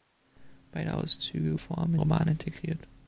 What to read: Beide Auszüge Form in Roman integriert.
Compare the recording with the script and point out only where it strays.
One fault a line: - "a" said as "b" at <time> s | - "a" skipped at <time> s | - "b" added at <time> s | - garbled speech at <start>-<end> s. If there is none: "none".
none